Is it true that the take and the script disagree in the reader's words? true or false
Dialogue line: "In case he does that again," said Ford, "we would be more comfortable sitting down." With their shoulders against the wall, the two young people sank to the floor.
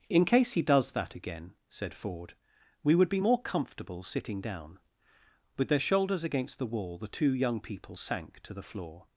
false